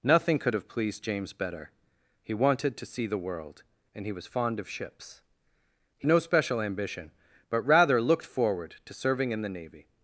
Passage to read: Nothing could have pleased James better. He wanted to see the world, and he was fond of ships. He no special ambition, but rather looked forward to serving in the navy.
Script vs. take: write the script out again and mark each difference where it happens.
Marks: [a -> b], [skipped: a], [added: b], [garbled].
Nothing could have pleased James better. He wanted to see the world, and he was fond of ships. He no special ambition, but rather looked forward to serving in the navy.